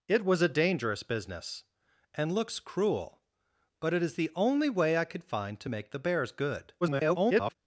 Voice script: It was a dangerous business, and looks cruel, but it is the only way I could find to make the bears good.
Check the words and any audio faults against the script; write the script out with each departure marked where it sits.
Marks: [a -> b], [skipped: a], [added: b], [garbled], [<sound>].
It was a dangerous business, and looks cruel, but it is the only way I could find to make the bears good. [garbled]